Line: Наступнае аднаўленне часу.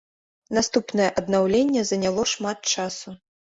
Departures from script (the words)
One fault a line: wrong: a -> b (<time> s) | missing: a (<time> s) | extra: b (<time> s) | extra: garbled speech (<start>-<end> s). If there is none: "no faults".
extra: заняло шмат (1.9 s)